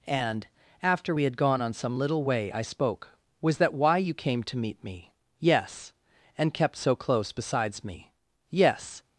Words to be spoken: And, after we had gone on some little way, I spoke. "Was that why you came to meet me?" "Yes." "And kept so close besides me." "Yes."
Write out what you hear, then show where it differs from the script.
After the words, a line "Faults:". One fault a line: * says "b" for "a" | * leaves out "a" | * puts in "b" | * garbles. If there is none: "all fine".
And, after we had gone on some little way, I spoke. "Was that why you came to meet me?" "Yes." "And kept so close besides me." "Yes."
Faults:
all fine